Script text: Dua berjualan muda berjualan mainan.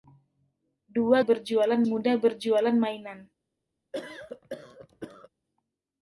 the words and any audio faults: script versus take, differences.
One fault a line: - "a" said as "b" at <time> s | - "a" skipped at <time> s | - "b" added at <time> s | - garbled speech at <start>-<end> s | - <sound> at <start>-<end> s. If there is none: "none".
- cough at 3.9-5.3 s